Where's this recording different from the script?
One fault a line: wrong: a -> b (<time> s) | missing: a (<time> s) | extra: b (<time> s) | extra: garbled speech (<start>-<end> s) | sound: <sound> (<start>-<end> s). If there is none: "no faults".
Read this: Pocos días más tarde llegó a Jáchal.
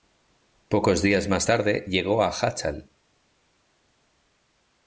no faults